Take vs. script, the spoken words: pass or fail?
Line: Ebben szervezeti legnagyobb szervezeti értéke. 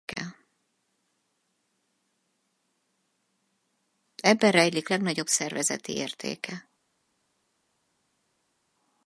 fail